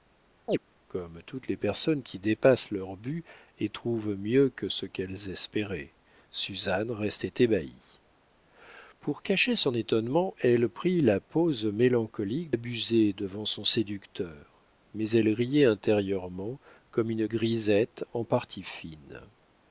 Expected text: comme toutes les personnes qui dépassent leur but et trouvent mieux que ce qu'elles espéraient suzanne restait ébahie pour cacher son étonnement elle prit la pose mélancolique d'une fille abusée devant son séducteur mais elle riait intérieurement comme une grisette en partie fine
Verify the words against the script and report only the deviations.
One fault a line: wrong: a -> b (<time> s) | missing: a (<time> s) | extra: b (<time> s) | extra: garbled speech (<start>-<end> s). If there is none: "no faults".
missing: d'une fille (12.5 s)